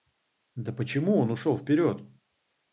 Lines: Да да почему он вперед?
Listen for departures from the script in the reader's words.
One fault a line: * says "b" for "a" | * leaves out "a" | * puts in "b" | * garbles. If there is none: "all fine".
* leaves out "да"
* puts in "ушел"